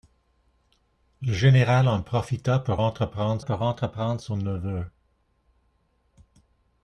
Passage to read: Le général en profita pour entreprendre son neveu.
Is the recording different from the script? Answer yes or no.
yes